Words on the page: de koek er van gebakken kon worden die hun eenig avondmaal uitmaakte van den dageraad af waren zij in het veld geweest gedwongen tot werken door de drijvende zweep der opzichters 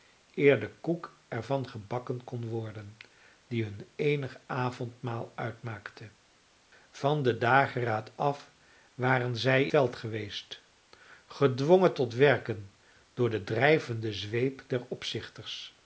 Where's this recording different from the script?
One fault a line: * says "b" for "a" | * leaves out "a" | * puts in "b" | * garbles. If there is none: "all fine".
* leaves out "in het"